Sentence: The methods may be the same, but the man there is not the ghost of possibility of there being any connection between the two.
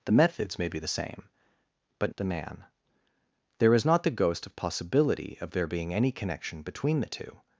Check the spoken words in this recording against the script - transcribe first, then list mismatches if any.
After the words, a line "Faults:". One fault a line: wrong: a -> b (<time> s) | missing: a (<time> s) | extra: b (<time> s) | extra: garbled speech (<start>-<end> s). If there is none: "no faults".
The methods may be the same, but the man there is not the ghost of possibility of there being any connection between the two.
Faults:
no faults